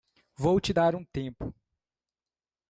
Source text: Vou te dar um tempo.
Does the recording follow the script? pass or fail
pass